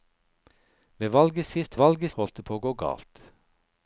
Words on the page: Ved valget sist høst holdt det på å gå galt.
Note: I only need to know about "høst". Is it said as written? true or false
false